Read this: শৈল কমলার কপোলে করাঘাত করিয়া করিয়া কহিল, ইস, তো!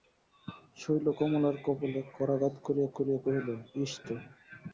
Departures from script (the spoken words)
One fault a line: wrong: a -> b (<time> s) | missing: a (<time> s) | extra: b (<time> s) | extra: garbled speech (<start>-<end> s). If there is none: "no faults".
no faults